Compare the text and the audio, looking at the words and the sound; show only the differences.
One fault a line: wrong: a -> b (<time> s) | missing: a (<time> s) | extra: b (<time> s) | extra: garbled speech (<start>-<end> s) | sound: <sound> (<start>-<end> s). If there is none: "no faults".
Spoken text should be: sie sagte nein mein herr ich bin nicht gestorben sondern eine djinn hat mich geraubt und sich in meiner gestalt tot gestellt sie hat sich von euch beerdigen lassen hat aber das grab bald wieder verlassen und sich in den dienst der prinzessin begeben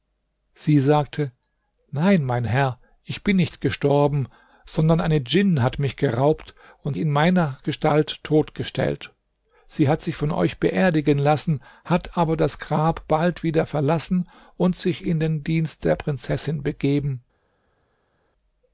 missing: sich (7.0 s)